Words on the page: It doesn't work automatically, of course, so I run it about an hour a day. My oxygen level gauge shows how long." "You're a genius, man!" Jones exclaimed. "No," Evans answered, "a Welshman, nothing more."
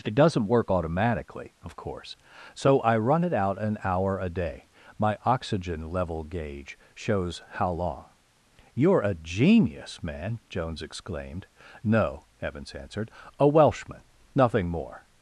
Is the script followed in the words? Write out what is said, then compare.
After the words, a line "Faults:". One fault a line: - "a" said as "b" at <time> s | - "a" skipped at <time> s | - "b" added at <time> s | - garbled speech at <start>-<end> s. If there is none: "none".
It doesn't work automatically, of course, so I run it out an hour a day. My oxygen level gauge shows how long." "You're a genius, man!" Jones exclaimed. "No," Evans answered, "a Welshman, nothing more."
Faults:
- "about" said as "out" at 3.3 s